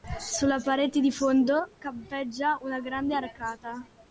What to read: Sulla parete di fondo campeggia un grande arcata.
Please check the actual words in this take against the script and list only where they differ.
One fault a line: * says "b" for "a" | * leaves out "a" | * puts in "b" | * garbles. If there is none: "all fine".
* says "una" for "un"